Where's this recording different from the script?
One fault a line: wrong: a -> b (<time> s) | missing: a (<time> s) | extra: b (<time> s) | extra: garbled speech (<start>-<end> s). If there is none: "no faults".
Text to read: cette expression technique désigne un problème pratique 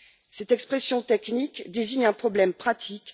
no faults